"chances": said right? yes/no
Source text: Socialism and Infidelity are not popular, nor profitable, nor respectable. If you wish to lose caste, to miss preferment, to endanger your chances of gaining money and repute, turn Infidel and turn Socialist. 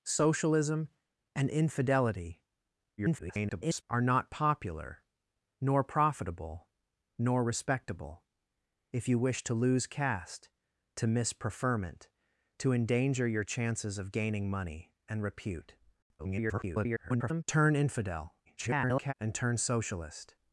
yes